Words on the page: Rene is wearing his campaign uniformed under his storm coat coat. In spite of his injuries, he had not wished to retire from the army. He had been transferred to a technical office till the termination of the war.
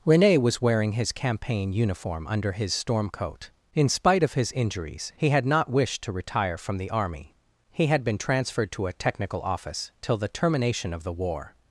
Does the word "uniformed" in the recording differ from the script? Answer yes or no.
yes